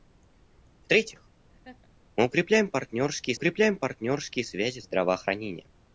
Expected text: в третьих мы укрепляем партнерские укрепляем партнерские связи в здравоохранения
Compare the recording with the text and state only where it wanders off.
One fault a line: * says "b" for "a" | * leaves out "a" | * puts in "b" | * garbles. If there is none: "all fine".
all fine